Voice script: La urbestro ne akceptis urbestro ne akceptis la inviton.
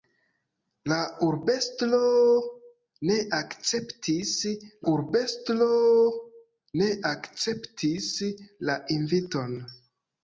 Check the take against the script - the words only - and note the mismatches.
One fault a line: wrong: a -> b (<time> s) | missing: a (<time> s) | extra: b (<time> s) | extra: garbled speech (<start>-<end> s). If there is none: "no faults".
no faults